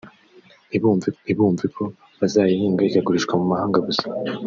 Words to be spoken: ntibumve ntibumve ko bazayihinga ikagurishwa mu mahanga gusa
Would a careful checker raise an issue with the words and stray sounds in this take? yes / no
no